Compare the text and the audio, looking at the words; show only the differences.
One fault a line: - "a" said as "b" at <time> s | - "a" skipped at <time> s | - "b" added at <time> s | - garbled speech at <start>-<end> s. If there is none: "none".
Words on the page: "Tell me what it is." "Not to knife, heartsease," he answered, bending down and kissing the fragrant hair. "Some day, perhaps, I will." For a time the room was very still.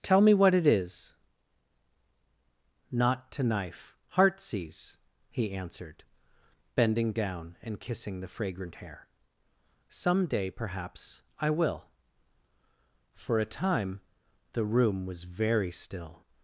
none